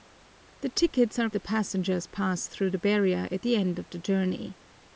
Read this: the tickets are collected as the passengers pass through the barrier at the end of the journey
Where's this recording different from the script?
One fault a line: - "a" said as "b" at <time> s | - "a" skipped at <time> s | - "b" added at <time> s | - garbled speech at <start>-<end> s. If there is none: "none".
- "collected as" skipped at 1.3 s